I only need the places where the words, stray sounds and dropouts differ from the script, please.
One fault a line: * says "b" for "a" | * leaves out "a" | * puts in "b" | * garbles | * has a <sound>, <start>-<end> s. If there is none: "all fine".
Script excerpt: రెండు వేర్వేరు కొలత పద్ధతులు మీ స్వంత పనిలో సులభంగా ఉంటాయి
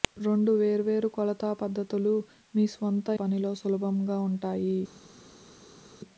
all fine